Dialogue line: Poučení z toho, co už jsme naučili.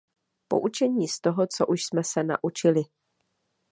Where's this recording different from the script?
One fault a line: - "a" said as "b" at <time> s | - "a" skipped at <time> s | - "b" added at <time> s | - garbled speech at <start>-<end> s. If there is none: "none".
- "se" added at 2.0 s